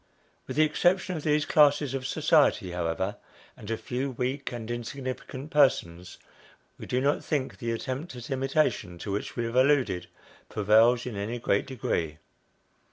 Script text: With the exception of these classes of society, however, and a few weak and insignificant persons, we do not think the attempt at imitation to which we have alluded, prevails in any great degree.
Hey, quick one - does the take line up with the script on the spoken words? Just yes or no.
yes